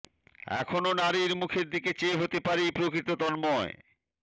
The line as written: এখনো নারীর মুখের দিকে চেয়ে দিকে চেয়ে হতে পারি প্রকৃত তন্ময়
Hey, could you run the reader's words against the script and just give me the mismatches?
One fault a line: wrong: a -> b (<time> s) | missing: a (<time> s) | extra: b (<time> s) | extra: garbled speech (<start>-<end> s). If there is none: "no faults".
missing: দিকে চেয়ে (2.2 s)